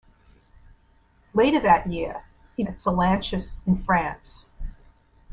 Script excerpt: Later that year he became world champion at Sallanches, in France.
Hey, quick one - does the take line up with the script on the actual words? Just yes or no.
no